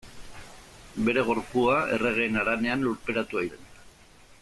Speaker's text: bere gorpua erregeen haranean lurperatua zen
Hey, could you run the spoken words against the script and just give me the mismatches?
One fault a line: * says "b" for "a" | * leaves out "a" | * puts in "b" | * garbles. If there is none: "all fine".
all fine